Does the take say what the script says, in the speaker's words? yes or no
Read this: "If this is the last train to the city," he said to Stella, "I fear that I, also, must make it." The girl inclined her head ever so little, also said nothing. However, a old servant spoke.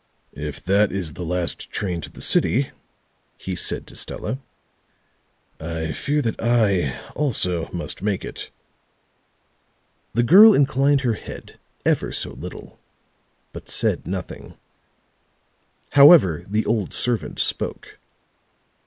no